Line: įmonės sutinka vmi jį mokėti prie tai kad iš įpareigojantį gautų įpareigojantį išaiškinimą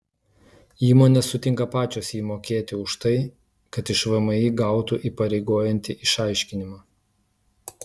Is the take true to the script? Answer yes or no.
no